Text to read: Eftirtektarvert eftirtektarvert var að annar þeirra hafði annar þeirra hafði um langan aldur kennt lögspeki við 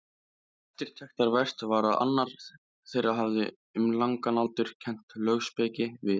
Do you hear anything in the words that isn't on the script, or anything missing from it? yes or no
yes